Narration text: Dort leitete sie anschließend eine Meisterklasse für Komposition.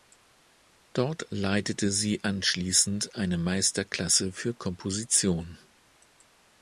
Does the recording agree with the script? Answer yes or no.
yes